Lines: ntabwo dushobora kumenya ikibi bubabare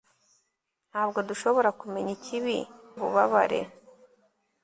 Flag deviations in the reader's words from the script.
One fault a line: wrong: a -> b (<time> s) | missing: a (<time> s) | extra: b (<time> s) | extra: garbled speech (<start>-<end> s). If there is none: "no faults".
no faults